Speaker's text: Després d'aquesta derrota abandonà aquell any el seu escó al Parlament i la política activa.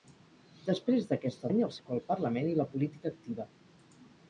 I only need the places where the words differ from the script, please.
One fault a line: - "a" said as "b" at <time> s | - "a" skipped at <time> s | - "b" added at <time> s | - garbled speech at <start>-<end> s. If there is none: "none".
- "derrota abandonà aquell" skipped at 1.5 s
- "seu" skipped at 1.8 s